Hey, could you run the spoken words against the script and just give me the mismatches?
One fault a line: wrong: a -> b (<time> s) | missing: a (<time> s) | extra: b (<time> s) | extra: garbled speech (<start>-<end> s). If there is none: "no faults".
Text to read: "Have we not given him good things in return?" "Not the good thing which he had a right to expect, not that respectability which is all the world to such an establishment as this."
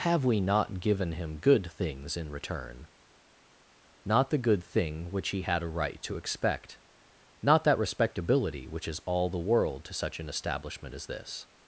no faults